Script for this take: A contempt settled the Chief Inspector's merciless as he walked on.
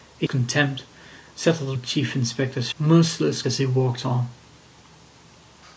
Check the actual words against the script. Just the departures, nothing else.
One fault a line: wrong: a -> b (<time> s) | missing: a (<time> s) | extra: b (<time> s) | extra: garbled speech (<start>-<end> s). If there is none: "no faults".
no faults